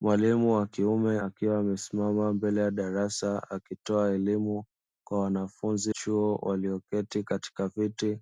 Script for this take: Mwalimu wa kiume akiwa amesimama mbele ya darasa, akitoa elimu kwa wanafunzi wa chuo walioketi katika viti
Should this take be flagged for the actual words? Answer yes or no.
yes